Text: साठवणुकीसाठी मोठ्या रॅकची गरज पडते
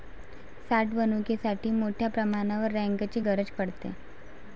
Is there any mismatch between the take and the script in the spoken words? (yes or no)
yes